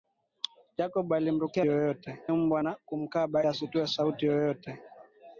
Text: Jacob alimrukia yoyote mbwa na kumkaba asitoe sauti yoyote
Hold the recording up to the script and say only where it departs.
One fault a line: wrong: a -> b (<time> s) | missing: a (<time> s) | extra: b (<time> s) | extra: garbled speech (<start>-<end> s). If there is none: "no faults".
no faults